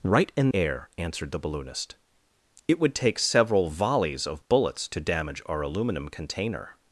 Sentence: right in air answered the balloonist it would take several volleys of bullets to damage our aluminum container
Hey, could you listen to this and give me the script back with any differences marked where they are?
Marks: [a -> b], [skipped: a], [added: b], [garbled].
right in air answered the balloonist it would take several volleys of bullets to damage our aluminum container